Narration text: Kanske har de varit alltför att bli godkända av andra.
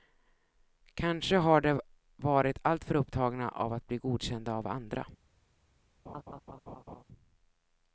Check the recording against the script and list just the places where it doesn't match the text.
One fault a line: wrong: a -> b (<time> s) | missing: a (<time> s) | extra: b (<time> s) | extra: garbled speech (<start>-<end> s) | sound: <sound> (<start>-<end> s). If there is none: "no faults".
extra: upptagna av (3.0 s)
sound: laugh (6.1-7.0 s)